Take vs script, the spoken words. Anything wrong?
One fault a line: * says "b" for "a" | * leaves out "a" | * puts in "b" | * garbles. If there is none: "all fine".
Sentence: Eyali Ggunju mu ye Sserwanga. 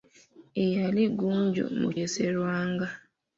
all fine